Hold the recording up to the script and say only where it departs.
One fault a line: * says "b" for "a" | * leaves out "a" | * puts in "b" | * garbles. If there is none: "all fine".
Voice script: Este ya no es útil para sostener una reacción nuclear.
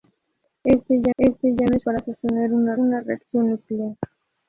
* puts in "este ya"
* leaves out "útil"
* puts in "una"